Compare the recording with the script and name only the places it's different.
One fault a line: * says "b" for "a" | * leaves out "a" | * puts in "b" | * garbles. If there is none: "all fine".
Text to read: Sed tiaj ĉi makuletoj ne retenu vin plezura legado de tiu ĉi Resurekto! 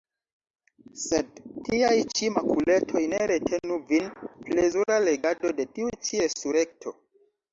all fine